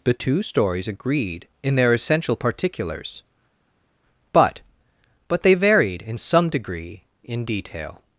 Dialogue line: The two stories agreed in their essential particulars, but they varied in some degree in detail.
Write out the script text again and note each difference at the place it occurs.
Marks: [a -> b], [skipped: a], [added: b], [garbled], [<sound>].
The two stories agreed in their essential particulars, but [added: but] they varied in some degree in detail.